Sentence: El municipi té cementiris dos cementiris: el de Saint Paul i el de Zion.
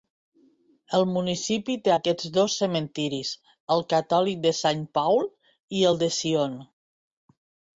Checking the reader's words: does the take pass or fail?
fail